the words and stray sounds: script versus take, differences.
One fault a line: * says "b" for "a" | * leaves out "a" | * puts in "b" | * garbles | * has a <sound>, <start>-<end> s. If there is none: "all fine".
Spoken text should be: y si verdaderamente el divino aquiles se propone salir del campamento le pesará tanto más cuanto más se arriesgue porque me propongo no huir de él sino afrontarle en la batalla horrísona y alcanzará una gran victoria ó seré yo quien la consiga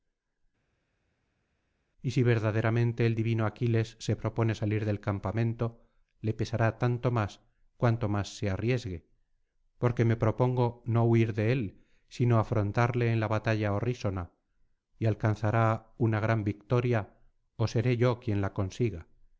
all fine